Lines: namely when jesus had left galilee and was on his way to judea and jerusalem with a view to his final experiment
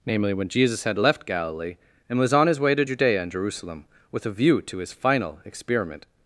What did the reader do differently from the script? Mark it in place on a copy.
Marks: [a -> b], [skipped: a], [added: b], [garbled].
namely when jesus had left galilee and was on his way to judea and jerusalem with a view to his final experiment